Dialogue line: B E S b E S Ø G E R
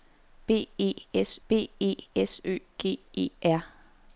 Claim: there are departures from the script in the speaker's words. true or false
false